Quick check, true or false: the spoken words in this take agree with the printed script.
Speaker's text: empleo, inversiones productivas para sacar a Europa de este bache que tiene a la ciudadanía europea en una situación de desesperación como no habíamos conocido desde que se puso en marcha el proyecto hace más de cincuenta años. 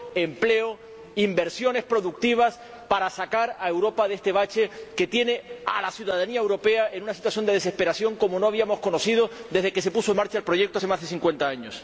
true